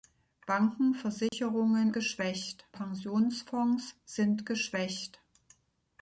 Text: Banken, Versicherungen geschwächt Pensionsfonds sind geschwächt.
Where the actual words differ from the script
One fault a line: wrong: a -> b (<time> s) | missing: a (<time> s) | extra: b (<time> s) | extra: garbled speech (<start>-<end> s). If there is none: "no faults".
no faults